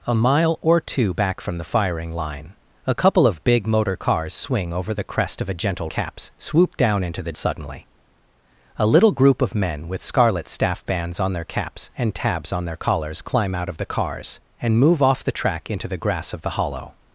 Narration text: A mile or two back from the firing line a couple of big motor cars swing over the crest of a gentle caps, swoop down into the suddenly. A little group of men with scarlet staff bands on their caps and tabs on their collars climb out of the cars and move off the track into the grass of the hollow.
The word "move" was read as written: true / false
true